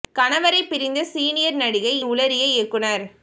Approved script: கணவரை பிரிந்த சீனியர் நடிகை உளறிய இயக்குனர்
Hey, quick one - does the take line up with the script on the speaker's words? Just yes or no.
yes